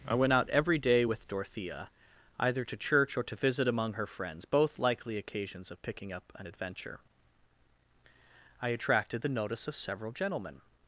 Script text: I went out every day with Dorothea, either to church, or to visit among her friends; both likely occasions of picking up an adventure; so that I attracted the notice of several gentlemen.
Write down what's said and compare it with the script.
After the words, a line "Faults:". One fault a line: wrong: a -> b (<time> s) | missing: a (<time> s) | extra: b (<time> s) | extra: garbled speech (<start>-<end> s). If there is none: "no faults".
I went out every day with Dorothea, either to church, or to visit among her friends; both likely occasions of picking up an adventure; I attracted the notice of several gentlemen.
Faults:
missing: so that (7.0 s)